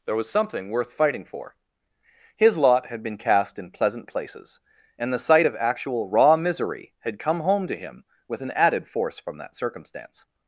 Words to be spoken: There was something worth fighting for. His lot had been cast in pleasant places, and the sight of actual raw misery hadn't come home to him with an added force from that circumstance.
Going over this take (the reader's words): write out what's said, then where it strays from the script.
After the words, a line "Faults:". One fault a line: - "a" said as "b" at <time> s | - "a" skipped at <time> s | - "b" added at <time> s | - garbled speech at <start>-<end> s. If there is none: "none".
There was something worth fighting for. His lot had been cast in pleasant places, and the sight of actual raw misery had come home to him with an added force from that circumstance.
Faults:
- "hadn't" said as "had" at 7.0 s